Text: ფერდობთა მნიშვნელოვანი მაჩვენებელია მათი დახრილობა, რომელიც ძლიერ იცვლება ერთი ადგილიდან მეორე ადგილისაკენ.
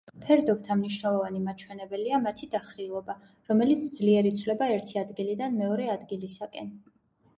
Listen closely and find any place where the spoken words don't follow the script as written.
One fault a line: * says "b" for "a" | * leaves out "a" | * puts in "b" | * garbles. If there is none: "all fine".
all fine